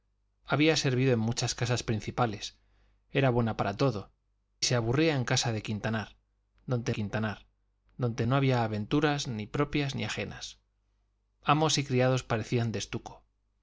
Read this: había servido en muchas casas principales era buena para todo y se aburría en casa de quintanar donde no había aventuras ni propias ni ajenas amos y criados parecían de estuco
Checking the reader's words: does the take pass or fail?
fail